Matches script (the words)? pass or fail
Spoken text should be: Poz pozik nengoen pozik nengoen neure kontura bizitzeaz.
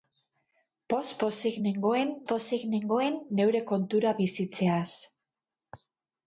pass